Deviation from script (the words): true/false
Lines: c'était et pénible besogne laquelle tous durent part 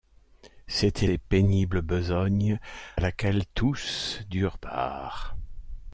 false